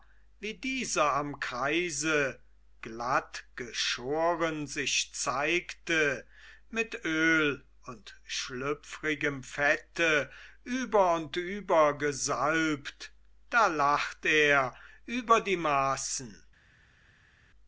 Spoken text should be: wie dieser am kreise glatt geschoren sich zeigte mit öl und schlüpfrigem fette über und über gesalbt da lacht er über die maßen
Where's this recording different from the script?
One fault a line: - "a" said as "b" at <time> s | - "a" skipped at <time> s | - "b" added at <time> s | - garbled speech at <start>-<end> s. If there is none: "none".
none